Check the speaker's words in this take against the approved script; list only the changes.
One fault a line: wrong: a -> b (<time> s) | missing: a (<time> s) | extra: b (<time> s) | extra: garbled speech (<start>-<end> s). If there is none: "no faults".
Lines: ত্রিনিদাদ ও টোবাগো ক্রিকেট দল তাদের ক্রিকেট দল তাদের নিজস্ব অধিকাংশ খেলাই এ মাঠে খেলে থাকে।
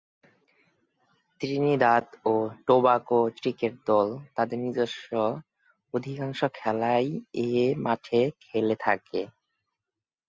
missing: ক্রিকেট দল তাদের (4.6 s)